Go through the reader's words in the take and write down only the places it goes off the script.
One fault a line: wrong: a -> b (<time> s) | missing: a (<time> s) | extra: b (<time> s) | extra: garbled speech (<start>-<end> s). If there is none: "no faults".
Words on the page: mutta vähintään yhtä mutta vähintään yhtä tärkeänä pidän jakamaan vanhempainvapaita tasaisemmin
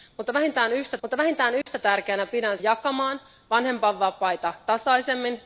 no faults